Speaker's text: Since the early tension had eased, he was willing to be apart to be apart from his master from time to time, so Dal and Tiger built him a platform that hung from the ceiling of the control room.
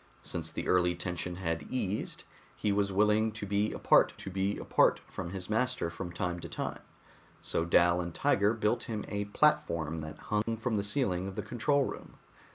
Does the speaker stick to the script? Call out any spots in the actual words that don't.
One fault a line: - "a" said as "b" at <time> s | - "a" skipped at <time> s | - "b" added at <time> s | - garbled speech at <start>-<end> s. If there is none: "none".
none